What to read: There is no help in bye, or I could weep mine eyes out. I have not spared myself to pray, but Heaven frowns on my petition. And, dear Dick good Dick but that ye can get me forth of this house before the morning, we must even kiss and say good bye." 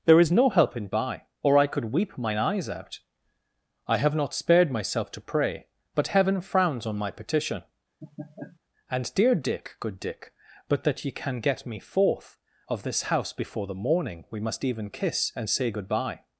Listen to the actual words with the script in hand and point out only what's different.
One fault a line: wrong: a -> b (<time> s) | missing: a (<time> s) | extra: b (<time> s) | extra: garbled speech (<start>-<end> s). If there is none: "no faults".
no faults